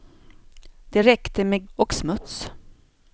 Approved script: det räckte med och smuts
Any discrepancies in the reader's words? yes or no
no